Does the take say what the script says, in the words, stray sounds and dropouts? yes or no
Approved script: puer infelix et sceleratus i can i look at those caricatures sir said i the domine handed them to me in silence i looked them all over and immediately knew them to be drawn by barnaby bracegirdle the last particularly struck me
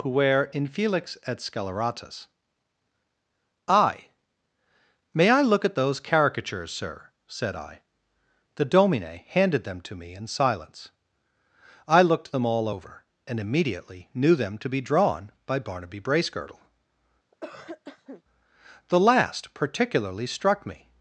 no